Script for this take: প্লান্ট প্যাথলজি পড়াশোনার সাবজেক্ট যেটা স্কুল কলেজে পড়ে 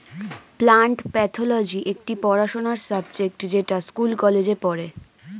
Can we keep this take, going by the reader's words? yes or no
no